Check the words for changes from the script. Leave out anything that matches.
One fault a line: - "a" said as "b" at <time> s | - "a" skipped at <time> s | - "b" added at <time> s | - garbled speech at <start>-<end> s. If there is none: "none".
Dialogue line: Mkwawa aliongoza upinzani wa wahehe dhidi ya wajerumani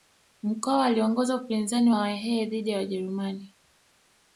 none